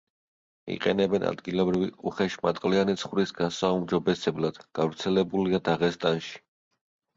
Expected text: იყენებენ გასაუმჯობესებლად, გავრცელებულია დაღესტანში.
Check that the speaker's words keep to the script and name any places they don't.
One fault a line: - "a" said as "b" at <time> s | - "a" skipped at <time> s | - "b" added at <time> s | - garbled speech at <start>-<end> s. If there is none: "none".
- "ადგილობრივი უხეშმატყლიანი ცხვრის" added at 1.3 s